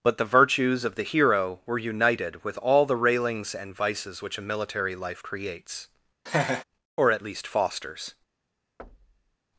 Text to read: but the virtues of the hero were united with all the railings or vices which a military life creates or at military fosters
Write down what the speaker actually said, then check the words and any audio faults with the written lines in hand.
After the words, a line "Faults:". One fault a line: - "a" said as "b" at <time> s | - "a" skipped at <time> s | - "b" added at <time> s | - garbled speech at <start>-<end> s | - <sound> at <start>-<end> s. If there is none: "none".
but the virtues of the hero were united with all the railings and vices which a military life creates or at least fosters
Faults:
- "or" said as "and" at 3.5 s
- laugh at 6.3-6.6 s
- "military" said as "least" at 7.2 s
- thud at 8.8-9.4 s